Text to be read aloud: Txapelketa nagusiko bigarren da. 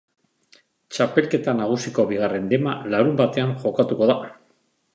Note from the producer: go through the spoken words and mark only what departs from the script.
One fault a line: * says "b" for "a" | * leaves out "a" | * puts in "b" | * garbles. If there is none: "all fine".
* puts in "dema larunbatean jokatuko"